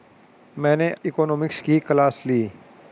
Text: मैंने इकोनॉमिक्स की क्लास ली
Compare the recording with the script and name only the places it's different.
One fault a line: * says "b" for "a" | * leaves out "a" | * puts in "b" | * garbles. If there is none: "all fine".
all fine